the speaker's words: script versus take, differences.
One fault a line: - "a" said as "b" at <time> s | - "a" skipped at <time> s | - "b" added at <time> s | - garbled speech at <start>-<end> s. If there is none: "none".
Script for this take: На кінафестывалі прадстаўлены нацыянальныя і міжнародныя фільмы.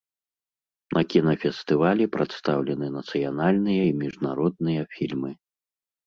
none